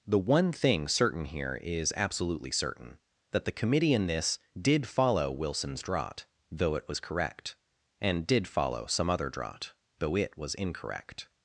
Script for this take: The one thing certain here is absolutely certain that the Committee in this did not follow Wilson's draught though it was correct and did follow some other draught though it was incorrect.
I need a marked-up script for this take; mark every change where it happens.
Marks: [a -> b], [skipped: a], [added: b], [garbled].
The one thing certain here is absolutely certain that the Committee in this did [skipped: not] follow Wilson's draught though it was correct and did follow some other draught though it was incorrect.